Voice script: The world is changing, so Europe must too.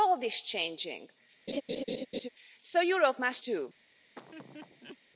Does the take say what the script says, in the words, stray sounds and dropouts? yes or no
no